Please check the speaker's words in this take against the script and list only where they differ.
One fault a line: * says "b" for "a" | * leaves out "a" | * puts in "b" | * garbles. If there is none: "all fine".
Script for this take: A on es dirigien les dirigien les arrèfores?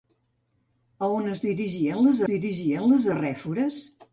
all fine